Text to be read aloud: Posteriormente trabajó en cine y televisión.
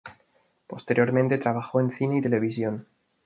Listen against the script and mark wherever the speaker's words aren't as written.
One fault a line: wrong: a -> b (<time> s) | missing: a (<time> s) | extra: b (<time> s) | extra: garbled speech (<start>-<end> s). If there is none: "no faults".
no faults